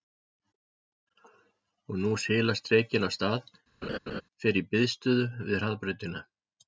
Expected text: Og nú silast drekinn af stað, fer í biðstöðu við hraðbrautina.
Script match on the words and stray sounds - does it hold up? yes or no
no